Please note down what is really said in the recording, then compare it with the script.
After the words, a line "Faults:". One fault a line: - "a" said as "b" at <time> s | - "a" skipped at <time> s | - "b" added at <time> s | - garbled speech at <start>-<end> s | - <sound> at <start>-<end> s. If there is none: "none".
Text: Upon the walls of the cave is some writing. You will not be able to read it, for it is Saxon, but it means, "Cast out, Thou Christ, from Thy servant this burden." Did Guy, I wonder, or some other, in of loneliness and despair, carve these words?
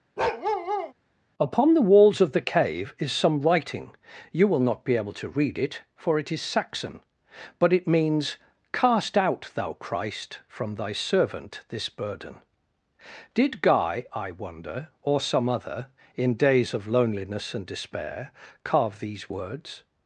Upon the walls of the cave is some writing. You will not be able to read it, for it is Saxon, but it means, "Cast out, Thou Christ, from Thy servant this burden." Did Guy, I wonder, or some other, in days of loneliness and despair, carve these words?
Faults:
- bark at 0.2-0.9 s
- "days" added at 16.4 s